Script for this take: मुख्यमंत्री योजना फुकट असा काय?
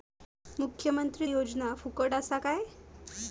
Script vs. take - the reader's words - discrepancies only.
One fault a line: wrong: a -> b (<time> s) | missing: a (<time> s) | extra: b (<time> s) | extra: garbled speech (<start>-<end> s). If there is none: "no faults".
no faults